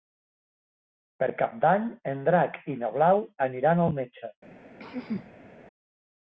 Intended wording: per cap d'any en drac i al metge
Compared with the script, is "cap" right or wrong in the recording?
right